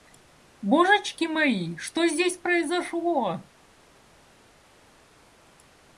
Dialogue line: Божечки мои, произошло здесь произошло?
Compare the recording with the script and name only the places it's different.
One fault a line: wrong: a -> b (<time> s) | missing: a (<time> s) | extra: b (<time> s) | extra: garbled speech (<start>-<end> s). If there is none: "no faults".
wrong: произошло -> что (1.8 s)